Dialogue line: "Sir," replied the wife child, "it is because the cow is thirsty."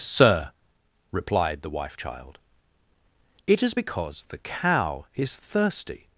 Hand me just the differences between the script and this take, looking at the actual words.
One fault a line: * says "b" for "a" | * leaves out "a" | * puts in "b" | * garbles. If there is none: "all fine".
all fine